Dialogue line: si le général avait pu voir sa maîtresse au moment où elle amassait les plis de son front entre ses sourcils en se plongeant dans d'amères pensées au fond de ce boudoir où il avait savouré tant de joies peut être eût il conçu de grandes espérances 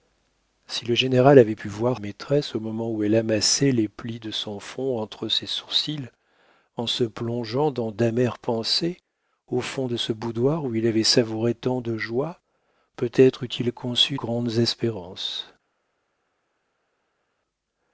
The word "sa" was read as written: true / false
false